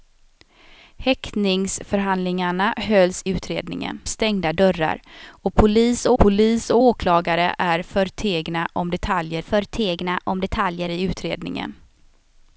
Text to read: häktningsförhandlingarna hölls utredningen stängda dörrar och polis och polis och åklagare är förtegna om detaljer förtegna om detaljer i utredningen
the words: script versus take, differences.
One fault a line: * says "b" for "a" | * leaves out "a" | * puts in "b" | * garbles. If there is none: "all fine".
all fine